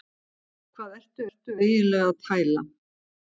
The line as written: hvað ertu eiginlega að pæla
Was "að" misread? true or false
false